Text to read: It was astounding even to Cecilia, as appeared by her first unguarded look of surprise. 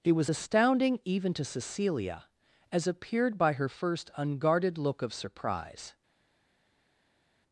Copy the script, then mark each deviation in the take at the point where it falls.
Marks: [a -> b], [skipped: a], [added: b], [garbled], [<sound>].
It was astounding even to Cecilia, as appeared by her first unguarded look of surprise.